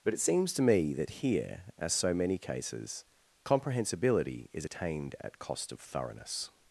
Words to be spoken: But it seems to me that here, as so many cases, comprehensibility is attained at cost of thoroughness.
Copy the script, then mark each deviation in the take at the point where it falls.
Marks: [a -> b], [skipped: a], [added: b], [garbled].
But it seems to me that here, as so many cases, comprehensibility is attained at cost of thoroughness.